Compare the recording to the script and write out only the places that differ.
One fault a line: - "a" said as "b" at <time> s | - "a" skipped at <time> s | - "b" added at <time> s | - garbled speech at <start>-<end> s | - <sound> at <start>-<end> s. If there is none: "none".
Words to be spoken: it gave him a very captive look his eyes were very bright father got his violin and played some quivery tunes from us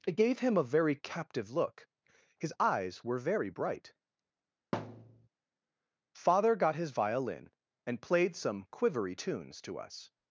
- thud at 4.7-5.3 s
- "from" said as "to" at 9.6 s